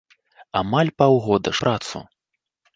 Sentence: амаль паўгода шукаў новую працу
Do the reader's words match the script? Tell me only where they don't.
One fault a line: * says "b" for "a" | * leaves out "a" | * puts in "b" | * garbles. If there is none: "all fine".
* leaves out "шукаў новую"